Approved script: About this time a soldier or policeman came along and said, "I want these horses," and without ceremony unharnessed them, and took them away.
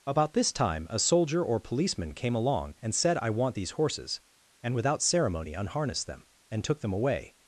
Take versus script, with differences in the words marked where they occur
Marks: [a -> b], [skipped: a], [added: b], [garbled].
About this time a soldier or policeman came along and said, "I want these horses," and without ceremony unharnessed them, and took them away.